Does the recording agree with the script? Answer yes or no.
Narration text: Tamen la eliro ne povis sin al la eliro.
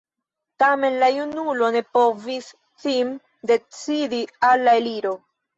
no